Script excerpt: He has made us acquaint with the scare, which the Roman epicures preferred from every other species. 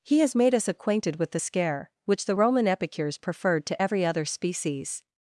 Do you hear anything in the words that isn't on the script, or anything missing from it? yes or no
yes